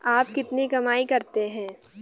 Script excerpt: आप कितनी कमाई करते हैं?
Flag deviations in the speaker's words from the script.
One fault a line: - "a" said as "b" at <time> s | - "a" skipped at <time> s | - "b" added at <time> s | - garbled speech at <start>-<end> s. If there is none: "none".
none